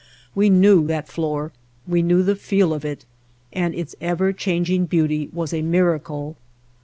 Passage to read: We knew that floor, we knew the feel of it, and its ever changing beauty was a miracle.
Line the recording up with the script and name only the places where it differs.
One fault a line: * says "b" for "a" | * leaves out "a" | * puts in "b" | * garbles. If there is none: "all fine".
all fine